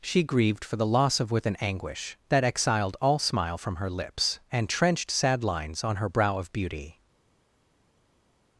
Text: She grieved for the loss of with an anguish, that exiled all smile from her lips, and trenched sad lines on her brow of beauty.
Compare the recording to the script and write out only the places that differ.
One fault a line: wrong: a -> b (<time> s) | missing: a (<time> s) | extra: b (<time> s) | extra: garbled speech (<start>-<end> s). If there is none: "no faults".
no faults